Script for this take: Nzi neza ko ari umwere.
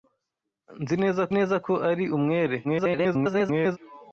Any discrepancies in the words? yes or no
yes